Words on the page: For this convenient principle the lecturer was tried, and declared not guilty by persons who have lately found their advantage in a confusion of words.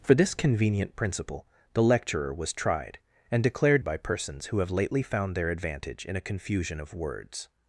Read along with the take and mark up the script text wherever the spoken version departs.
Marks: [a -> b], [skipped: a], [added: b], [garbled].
For this convenient principle the lecturer was tried, and declared [skipped: not guilty] by persons who have lately found their advantage in a confusion of words.